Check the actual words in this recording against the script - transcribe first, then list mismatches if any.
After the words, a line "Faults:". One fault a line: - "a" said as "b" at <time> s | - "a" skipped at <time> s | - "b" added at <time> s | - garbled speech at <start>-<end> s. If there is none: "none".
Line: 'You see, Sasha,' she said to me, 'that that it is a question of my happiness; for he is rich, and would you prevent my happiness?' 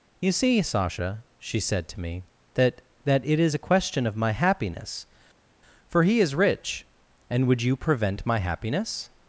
'You see, Sasha,' she said to me, 'that that it is a question of my happiness; for he is rich, and would you prevent my happiness?'
Faults:
none